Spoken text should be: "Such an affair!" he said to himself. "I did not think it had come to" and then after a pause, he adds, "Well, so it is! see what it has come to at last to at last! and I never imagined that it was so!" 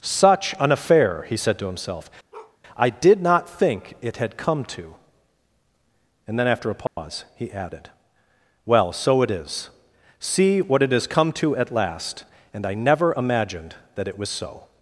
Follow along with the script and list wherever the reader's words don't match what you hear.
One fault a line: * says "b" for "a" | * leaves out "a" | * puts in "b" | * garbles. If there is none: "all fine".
* says "added" for "adds"
* leaves out "to at last"